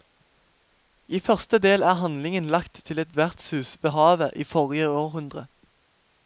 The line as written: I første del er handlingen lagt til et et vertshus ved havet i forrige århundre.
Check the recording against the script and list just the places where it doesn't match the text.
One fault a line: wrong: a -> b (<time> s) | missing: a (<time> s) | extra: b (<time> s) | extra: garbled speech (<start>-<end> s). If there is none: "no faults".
no faults